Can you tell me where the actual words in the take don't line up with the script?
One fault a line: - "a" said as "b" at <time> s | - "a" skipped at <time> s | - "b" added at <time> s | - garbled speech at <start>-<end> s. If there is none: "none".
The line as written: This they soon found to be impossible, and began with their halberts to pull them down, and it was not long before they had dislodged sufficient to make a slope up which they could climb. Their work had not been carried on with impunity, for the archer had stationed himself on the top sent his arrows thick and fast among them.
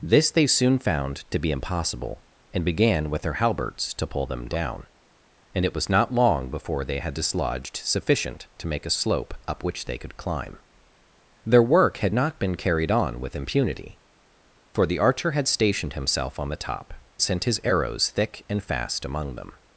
none